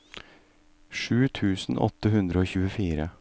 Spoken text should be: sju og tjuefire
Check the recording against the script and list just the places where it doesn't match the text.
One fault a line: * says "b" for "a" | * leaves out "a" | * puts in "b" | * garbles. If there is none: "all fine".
* puts in "tusen åtte hundre"